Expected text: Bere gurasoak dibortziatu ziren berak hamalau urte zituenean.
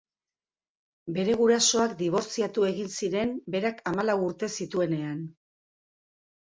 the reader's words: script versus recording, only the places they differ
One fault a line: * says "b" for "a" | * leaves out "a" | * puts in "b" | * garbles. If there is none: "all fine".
* puts in "egin"